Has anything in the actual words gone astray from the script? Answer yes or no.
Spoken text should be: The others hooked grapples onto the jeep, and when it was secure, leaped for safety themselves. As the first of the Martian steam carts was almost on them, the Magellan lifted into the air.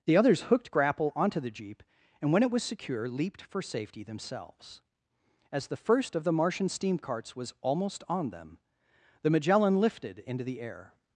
yes